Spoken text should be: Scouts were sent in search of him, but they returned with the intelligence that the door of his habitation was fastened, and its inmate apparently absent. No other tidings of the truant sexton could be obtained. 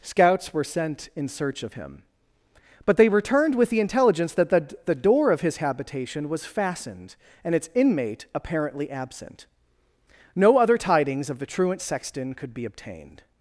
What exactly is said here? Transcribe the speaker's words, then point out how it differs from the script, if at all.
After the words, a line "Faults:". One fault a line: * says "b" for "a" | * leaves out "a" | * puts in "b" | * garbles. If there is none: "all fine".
Scouts were sent in search of him, but they returned with the intelligence that the the door of his habitation was fastened, and its inmate apparently absent. No other tidings of the truant sexton could be obtained.
Faults:
* puts in "the"